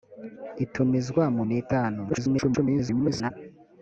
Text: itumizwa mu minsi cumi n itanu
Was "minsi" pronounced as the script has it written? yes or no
no